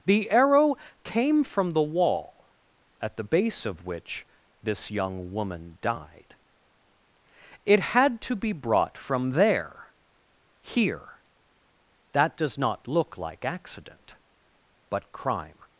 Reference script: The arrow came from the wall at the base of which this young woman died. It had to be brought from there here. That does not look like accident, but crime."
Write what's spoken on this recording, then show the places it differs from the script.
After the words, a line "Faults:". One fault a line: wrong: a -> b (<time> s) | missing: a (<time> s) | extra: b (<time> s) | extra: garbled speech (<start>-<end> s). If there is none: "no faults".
The arrow came from the wall at the base of which this young woman died. It had to be brought from there here. That does not look like accident, but crime."
Faults:
no faults